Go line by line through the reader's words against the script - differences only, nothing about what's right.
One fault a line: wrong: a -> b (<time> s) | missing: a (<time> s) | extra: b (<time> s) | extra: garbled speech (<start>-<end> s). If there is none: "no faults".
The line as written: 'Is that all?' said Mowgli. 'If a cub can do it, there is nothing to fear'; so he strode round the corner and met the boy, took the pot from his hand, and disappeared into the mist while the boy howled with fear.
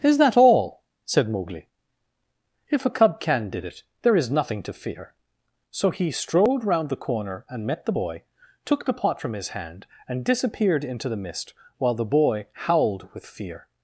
wrong: do -> did (3.5 s)